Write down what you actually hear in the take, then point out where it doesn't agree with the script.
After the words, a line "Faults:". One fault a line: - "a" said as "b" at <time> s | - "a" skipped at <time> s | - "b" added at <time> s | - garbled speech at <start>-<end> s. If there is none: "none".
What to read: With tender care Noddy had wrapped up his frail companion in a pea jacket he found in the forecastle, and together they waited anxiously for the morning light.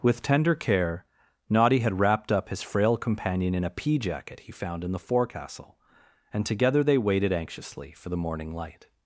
With tender care Noddy had wrapped up his frail companion in a pea jacket he found in the forecastle, and together they waited anxiously for the morning light.
Faults:
none